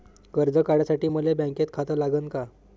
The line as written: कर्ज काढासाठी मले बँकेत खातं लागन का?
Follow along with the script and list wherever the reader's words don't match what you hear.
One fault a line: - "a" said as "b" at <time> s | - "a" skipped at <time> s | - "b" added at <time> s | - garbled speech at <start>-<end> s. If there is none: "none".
none